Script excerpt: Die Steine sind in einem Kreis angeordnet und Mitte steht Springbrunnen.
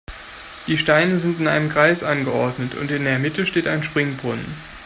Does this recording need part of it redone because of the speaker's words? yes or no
yes